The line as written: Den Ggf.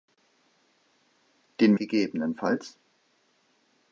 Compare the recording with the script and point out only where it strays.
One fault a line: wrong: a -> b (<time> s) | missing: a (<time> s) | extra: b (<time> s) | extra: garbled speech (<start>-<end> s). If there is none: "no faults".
no faults